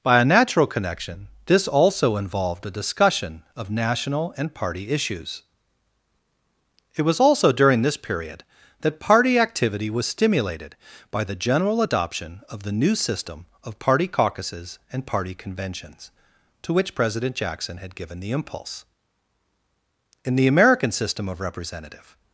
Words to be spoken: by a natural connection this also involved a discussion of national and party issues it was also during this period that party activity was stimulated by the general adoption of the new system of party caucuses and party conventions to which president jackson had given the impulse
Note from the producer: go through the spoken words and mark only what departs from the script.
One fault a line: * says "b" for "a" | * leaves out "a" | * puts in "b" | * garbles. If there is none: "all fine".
* puts in "in the american system of representative"